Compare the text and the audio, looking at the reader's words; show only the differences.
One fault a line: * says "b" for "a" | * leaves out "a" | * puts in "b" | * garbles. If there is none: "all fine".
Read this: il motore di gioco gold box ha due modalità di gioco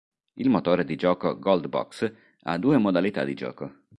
all fine